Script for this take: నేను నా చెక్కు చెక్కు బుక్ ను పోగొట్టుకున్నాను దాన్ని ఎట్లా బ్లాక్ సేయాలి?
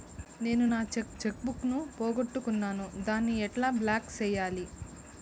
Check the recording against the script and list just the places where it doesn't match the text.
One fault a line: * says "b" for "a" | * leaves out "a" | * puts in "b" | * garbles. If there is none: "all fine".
all fine